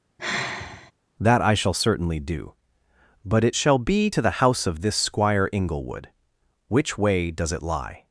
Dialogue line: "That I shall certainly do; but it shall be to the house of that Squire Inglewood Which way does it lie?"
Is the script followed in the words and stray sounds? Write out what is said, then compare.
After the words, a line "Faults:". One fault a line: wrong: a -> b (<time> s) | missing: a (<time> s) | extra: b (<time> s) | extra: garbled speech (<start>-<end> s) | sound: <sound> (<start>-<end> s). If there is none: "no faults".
"That I shall certainly do; but it shall be to the house of this Squire Inglewood Which way does it lie?"
Faults:
sound: sigh (0.2-0.9 s)
wrong: that -> this (4.8 s)